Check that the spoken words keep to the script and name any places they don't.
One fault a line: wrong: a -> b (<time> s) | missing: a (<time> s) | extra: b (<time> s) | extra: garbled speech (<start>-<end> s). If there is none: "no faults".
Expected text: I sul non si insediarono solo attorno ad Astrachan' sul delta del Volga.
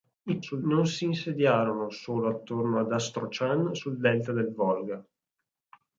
no faults